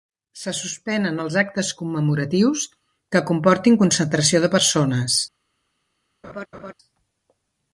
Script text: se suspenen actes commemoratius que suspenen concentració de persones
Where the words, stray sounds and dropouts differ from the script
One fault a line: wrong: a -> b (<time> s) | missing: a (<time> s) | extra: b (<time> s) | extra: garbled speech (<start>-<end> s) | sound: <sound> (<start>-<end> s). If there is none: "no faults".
extra: els (1.2 s)
wrong: suspenen -> comportin (3.3 s)
sound: laugh (6.2-6.7 s)